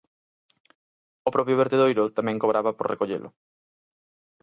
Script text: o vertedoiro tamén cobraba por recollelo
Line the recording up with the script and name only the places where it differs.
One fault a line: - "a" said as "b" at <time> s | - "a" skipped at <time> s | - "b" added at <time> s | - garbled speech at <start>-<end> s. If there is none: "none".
- "propio" added at 1.4 s